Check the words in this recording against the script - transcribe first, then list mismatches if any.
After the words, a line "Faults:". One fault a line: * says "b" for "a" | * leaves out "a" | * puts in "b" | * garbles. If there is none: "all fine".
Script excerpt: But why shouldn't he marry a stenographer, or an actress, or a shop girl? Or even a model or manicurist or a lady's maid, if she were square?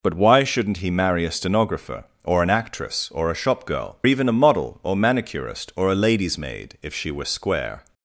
But why shouldn't he marry a stenographer, or an actress, or a shop girl? Even a model or manicurist or a lady's maid, if she were square?
Faults:
* leaves out "Or"